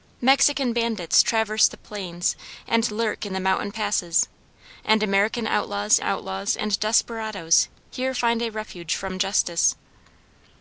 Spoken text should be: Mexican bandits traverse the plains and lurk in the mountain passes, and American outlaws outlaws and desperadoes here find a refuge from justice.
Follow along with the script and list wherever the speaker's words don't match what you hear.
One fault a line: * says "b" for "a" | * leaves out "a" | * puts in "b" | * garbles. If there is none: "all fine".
all fine